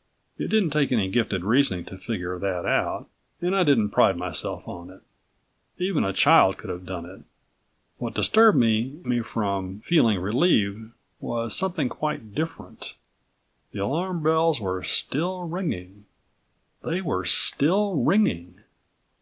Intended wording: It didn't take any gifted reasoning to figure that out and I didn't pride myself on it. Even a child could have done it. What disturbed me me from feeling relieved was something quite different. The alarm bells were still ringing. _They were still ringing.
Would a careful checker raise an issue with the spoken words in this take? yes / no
no